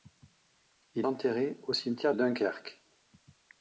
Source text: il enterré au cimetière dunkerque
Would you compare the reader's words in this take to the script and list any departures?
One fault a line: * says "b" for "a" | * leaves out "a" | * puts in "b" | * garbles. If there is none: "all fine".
all fine